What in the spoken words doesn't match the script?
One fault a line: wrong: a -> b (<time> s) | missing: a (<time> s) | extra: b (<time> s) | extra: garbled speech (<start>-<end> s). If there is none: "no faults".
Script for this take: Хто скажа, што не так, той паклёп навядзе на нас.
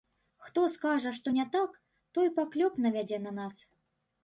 no faults